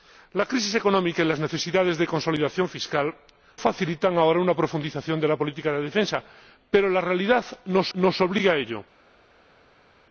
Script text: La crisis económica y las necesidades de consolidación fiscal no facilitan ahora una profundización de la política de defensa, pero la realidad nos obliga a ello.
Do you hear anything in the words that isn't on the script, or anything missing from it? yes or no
yes